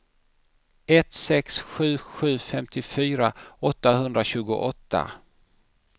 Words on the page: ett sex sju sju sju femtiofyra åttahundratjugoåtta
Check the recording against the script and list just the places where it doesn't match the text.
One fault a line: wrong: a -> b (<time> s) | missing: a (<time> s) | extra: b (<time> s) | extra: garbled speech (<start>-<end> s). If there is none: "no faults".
missing: sju (2.4 s)